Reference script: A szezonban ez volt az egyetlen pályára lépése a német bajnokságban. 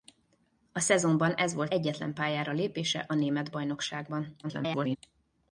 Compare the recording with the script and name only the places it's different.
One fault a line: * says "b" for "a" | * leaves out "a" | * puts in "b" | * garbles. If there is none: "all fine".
* leaves out "az"
* garbles